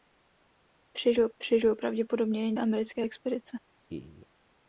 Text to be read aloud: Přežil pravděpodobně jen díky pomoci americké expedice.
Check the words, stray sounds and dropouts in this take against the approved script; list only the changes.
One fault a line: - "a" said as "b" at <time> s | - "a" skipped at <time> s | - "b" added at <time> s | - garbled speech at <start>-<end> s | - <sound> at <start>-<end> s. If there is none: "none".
- "přežil" added at 1.4 s
- "díky pomoci" skipped at 2.5 s
- laugh at 3.9-4.3 s